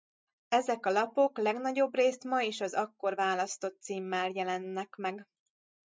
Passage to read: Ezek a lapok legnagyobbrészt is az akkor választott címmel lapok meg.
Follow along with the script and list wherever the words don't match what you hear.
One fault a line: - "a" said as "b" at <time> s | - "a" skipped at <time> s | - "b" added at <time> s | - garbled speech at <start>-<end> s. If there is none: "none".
- "ma" added at 2.2 s
- "lapok" said as "jelennek" at 4.3 s